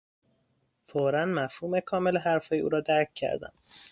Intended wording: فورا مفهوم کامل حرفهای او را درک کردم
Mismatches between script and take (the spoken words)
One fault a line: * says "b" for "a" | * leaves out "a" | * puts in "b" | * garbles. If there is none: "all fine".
all fine